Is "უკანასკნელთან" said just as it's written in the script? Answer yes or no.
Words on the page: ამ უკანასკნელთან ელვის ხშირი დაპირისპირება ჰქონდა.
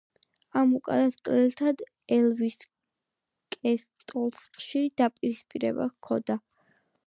yes